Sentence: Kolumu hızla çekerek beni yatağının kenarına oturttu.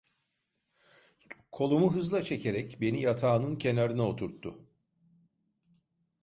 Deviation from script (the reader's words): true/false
false